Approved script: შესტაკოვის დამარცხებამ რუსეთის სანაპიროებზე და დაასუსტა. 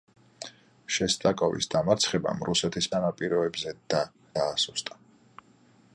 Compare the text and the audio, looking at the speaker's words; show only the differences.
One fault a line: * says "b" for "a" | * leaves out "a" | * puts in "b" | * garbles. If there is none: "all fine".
all fine